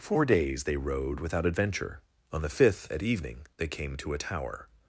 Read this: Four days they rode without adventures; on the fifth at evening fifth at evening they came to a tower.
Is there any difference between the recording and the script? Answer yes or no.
yes